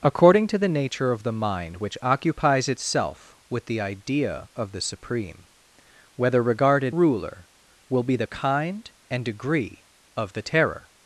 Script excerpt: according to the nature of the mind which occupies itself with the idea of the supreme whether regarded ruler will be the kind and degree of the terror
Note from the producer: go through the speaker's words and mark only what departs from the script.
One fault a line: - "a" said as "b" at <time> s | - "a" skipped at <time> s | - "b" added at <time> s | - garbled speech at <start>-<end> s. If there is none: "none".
none